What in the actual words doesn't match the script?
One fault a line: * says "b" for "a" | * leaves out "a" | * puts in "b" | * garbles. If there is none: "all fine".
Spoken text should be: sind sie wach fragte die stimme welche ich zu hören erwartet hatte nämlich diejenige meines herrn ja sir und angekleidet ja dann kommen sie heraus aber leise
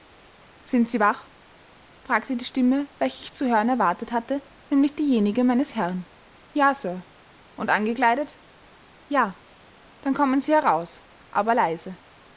all fine